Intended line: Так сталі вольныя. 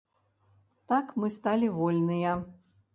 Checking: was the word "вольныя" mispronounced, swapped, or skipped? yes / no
no